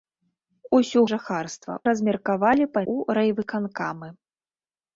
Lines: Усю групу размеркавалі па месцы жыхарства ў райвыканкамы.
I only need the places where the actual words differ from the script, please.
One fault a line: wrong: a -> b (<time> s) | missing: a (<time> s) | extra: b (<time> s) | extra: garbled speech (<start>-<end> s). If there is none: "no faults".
wrong: групу -> жыхарства (1.1 s)
missing: месцы жыхарства (2.8 s)